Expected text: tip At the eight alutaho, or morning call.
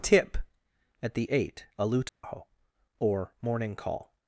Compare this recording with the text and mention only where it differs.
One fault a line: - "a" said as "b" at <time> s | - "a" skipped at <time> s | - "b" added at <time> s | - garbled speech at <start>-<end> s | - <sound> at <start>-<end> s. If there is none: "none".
- dropout at 2.1-2.2 s